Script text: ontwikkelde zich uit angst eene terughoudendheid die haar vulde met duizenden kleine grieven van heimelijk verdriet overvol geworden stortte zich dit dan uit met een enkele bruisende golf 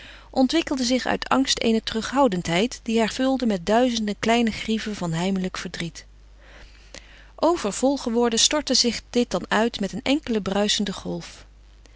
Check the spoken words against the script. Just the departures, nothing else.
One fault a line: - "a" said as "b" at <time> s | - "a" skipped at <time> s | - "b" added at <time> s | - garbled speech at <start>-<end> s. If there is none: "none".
none